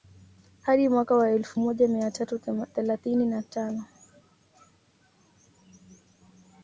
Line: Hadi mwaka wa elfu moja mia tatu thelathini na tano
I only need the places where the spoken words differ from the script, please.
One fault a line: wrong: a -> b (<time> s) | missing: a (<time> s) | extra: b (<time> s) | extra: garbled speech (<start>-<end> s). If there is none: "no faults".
no faults